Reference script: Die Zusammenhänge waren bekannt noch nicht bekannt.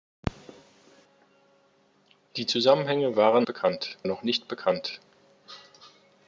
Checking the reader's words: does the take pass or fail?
pass